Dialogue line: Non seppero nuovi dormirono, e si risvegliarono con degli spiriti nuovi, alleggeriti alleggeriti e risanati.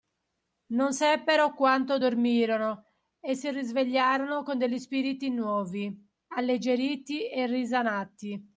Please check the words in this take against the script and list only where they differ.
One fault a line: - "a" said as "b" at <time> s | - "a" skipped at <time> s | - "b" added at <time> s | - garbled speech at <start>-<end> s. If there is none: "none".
- "nuovi" said as "quanto" at 1.5 s
- "alleggeriti" skipped at 7.3 s